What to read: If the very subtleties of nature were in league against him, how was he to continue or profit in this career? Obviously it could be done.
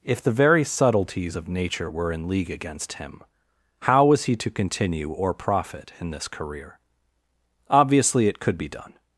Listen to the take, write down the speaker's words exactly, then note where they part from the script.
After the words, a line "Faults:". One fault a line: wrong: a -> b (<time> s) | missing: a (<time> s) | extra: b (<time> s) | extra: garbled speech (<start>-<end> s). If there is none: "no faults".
If the very subtleties of nature were in league against him, how was he to continue or profit in this career? Obviously it could be done.
Faults:
no faults